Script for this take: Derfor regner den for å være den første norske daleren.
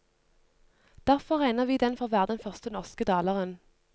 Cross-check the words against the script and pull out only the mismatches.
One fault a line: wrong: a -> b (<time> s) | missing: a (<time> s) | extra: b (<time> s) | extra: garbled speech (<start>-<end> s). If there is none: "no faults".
extra: vi (1.6 s)